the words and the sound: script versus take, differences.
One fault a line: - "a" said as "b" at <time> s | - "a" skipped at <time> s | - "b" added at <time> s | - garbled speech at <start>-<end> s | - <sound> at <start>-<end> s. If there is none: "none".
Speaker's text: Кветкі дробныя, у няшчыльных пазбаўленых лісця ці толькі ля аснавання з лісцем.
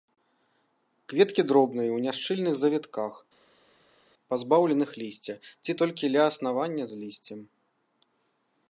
- "завітках" added at 2.6 s